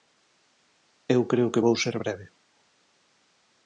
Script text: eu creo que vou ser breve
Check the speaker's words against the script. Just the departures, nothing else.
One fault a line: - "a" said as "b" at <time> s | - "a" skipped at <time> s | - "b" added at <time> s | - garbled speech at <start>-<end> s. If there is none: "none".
none